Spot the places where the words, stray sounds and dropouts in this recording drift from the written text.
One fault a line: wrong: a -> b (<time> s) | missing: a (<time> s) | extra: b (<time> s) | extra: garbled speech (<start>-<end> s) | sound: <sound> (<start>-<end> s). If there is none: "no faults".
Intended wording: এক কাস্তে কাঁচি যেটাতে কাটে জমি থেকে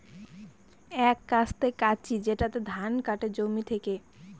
extra: ধান (2.7 s)